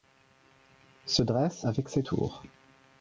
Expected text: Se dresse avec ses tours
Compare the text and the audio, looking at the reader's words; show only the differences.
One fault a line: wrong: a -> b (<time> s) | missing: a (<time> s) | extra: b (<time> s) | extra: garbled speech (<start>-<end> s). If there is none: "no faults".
no faults